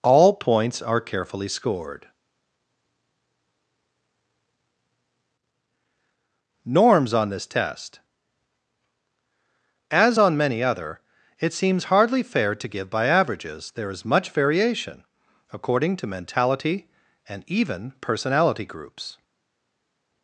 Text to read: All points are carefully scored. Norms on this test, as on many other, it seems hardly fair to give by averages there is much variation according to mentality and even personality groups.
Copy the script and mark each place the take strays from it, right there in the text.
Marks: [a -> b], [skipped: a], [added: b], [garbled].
All points are carefully scored. Norms on this test, as on many other, it seems hardly fair to give by averages there is much variation according to mentality and even personality groups.